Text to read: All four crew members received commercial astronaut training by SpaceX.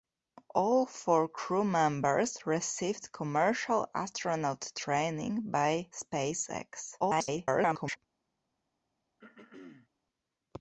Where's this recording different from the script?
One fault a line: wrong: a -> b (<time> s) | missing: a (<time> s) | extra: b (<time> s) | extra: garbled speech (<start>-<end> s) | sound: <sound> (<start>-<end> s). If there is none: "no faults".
extra: garbled speech (7.0-8.0 s)
sound: throat clearing (9.2-9.9 s)